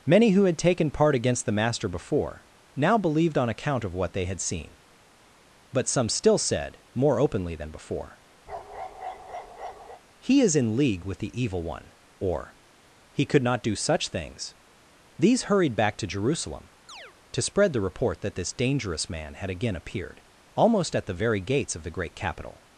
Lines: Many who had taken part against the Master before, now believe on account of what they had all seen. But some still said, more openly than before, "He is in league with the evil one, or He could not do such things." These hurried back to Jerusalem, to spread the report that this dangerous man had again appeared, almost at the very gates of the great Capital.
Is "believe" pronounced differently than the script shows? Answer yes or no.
yes